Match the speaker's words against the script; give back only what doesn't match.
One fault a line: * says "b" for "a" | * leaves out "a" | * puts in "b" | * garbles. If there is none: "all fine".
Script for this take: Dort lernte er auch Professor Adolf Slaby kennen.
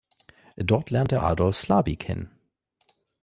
* leaves out "auch Professor"